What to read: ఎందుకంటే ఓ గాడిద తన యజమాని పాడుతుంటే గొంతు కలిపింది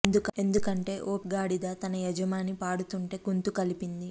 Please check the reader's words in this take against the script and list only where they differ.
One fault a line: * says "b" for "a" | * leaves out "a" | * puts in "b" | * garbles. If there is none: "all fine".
all fine